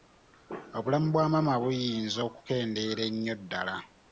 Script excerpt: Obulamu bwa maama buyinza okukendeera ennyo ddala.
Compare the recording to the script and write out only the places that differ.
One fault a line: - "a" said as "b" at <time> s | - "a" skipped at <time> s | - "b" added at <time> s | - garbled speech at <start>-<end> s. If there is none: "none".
none